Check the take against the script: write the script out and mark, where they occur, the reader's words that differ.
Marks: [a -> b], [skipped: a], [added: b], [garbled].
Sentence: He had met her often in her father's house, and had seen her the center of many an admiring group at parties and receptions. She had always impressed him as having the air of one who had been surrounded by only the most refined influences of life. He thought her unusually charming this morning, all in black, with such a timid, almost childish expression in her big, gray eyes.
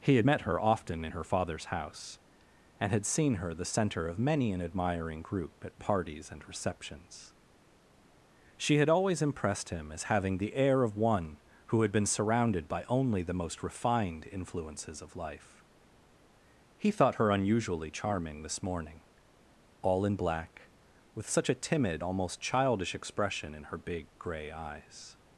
He had met her often in her father's house, and had seen her the center of many an admiring group at parties and receptions. She had always impressed him as having the air of one who had been surrounded by only the most refined influences of life. He thought her unusually charming this morning, all in black, with such a timid, almost childish expression in her big, gray eyes.